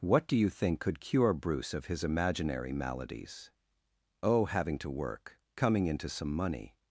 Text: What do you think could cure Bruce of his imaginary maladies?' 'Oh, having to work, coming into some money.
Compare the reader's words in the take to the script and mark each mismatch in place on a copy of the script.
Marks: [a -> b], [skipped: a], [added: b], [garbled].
What do you think could cure Bruce of his imaginary maladies?' 'Oh, having to work, coming into some money.